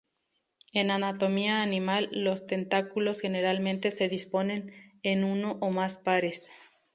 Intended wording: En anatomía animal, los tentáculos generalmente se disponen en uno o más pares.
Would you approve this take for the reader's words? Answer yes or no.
yes